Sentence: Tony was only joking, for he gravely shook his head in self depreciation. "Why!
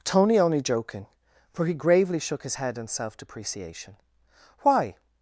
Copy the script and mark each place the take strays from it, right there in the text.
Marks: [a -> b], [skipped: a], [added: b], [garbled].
Tony [skipped: was] only joking, for he gravely shook his head in self depreciation. "Why!